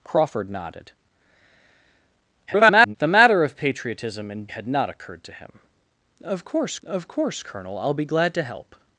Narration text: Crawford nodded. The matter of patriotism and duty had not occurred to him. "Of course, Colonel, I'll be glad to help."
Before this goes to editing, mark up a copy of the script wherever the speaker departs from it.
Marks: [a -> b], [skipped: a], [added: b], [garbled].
Crawford nodded. [garbled] The matter of patriotism and [skipped: duty] had not occurred to him. "Of course, [added: of course] Colonel, I'll be glad to help."